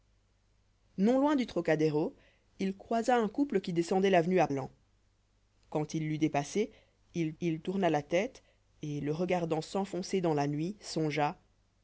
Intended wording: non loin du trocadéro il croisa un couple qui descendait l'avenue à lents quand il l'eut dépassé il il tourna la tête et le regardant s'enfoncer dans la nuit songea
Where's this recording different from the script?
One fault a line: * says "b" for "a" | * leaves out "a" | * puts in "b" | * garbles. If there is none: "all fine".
all fine